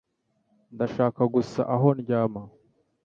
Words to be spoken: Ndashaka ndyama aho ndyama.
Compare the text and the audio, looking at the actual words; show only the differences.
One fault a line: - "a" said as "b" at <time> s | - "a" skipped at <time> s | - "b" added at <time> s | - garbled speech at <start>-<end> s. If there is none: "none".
- "ndyama" said as "gusa" at 1.3 s